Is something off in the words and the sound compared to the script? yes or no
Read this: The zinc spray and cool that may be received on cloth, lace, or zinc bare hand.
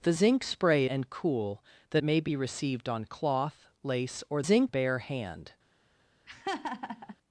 yes